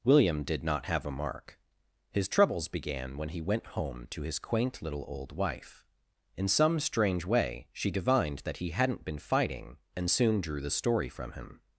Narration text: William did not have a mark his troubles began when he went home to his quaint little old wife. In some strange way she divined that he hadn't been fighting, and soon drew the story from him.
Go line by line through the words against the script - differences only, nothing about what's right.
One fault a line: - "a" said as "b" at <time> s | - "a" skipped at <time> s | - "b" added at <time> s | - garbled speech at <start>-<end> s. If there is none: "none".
none